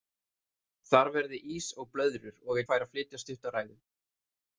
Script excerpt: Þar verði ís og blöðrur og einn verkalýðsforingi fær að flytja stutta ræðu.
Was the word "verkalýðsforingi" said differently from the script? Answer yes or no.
yes